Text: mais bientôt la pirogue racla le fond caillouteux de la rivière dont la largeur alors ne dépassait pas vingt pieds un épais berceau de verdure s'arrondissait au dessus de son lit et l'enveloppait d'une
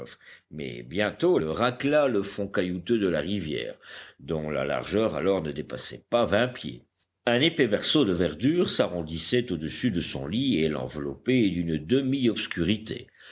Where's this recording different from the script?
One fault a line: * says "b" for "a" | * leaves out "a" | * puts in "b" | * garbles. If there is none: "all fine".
* leaves out "la pirogue"